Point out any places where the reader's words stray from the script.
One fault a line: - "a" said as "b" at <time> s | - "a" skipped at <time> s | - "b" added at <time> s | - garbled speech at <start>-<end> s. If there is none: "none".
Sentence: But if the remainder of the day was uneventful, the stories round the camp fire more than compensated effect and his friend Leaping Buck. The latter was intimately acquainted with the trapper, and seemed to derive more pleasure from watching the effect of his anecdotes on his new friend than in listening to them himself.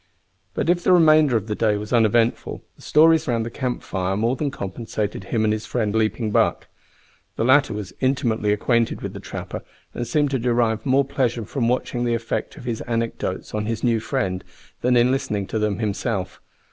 - "effect" said as "him" at 5.2 s